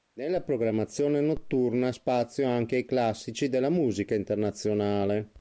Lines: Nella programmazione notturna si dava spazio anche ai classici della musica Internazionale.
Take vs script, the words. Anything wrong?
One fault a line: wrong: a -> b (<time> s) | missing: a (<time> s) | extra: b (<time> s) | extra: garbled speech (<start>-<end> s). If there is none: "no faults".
missing: si dava (1.9 s)